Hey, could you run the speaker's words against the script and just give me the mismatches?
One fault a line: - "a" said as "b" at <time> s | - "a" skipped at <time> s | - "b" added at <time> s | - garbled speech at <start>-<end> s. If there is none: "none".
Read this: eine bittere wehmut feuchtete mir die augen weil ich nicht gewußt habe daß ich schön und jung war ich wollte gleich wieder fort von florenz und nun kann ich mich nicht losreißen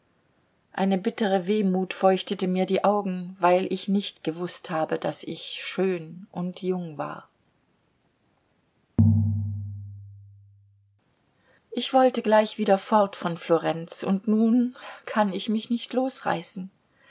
none